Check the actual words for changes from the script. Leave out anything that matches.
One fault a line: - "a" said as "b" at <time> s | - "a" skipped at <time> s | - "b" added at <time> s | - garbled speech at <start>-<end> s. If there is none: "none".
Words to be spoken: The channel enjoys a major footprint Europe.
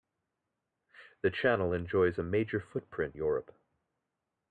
none